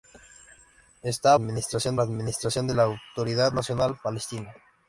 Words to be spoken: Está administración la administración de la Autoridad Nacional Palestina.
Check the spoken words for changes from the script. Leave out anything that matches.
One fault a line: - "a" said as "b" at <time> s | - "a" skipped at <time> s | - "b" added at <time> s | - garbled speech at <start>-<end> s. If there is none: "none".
none